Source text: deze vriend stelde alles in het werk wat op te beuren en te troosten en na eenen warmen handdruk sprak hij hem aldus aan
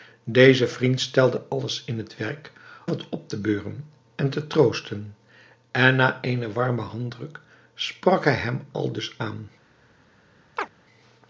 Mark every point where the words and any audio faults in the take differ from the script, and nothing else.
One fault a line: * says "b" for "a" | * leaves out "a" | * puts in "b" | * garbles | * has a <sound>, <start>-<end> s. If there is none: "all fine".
* has a chirp, 10.6-10.7 s